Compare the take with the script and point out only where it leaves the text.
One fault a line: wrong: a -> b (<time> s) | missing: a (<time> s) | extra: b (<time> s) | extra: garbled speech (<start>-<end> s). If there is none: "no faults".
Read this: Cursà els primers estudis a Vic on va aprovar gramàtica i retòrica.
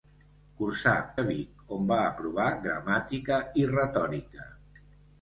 missing: els primers estudis (0.9 s)